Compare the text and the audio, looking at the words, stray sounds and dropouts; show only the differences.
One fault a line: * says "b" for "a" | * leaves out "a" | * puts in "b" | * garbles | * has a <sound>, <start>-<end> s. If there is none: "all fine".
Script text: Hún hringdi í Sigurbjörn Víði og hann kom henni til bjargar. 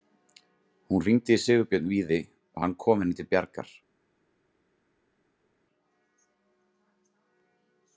all fine